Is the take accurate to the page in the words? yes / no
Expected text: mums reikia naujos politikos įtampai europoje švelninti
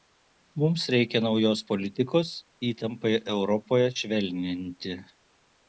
yes